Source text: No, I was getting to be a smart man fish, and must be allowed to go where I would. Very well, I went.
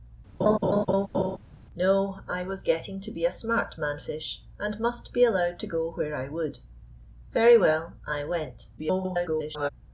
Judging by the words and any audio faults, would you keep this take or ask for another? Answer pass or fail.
fail